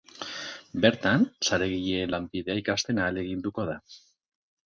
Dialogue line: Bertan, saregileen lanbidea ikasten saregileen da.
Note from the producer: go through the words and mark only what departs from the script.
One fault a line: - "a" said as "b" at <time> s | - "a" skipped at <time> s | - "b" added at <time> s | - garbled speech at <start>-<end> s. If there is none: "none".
- "saregileen" said as "ahaleginduko" at 3.1 s